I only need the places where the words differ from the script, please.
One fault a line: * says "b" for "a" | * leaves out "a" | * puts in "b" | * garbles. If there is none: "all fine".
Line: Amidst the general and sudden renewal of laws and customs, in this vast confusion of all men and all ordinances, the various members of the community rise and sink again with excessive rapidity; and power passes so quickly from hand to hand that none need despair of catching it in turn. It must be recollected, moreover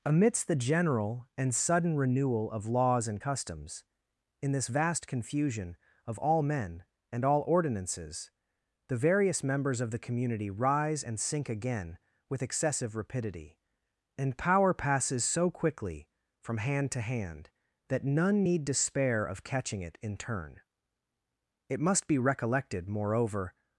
all fine